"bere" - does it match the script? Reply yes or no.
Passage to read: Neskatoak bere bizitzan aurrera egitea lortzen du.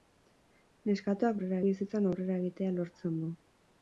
no